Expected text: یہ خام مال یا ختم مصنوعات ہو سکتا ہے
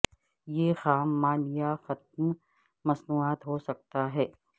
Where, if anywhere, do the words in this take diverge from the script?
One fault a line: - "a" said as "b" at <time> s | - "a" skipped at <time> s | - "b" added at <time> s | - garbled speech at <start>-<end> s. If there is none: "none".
none